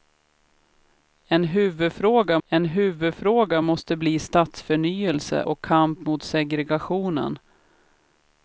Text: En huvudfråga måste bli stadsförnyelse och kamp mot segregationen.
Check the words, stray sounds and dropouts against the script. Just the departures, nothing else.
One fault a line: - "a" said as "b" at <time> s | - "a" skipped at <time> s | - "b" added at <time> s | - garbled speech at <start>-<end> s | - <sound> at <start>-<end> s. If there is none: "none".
- "en huvudfråga" added at 2.5 s